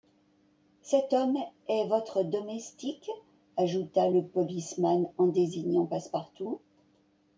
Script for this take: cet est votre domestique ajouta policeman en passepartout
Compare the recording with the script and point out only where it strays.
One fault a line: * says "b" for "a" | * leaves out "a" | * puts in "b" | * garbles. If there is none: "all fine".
* puts in "homme"
* puts in "le"
* puts in "désignant"